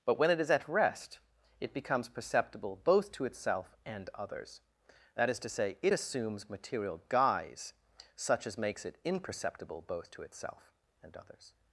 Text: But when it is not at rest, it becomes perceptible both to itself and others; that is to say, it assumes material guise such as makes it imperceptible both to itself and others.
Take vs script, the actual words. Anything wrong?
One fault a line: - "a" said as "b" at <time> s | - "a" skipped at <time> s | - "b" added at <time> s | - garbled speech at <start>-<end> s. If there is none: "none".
- "not" skipped at 0.5 s